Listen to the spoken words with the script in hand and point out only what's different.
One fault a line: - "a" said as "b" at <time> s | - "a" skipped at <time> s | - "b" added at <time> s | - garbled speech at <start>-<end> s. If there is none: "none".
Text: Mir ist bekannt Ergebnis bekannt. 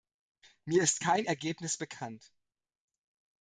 - "bekannt" said as "kein" at 1.0 s